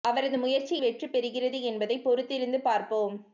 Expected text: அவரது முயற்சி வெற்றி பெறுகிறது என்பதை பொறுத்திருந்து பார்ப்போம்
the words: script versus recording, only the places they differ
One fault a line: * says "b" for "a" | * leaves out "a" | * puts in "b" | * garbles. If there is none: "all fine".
all fine